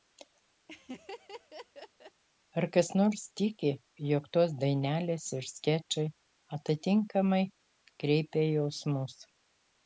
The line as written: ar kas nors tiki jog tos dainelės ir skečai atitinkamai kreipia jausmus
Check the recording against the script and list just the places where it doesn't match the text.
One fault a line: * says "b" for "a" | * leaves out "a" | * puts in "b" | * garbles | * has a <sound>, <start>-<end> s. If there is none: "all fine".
* has a laugh, 0.7-2.2 s